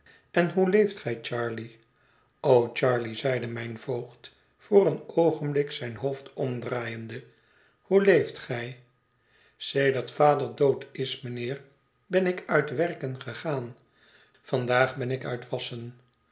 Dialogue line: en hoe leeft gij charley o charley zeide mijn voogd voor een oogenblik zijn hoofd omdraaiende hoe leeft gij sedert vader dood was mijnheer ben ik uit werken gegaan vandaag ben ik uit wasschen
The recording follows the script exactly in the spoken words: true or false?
false